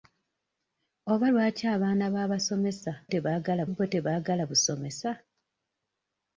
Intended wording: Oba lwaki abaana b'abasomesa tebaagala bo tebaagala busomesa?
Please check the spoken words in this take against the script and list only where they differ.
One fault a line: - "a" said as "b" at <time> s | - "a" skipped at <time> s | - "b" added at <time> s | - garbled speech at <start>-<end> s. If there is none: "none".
none